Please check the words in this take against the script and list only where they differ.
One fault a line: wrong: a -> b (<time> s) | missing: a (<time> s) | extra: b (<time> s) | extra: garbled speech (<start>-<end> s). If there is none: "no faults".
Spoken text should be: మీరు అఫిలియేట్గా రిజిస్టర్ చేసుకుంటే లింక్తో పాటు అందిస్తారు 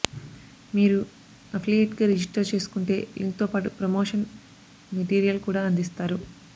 extra: ప్రమోషన్ మెటీరియల్ కూడా (3.8 s)